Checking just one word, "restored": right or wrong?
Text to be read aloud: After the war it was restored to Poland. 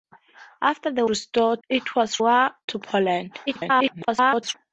wrong